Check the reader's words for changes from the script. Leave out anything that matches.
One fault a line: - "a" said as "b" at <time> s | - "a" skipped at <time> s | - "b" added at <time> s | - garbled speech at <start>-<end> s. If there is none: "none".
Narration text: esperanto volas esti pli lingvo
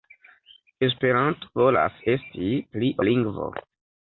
none